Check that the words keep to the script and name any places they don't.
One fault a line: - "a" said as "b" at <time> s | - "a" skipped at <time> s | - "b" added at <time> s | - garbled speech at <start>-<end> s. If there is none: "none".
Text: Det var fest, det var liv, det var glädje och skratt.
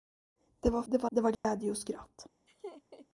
- "fest" skipped at 0.8 s
- "liv" skipped at 1.1 s